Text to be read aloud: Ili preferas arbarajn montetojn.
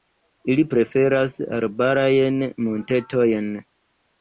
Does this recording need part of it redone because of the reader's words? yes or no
no